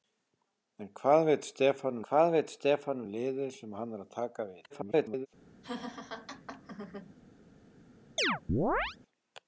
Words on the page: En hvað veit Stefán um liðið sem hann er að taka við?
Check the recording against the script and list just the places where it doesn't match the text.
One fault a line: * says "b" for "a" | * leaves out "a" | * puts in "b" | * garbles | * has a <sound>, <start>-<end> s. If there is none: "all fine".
* puts in "hvað veit Stefán"
* garbles
* has a laugh, 5.6-7.1 s
* has a chirp, 8.2-9.0 s